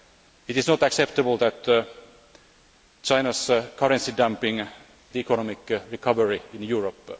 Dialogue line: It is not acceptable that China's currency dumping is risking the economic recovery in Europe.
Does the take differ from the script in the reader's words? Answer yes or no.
yes